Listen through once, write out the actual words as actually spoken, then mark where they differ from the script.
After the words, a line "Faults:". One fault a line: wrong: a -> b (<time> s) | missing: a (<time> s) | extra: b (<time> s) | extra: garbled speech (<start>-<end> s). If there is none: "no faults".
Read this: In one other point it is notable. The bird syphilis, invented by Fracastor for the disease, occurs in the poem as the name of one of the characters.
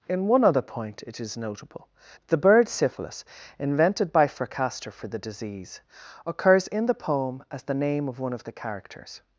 In one other point it is notable. The bird syphilis, invented by Fracastor for the disease, occurs in the poem as the name of one of the characters.
Faults:
no faults